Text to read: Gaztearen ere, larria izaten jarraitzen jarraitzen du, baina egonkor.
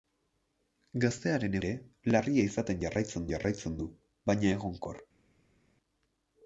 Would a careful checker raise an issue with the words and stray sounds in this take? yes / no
no